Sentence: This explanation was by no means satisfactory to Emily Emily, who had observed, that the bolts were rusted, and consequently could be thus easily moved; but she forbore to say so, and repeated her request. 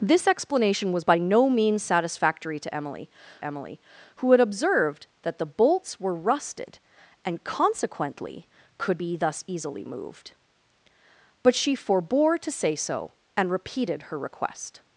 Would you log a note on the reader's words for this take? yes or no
no